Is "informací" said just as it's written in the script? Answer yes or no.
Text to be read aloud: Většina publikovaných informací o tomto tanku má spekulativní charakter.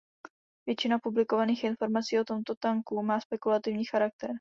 yes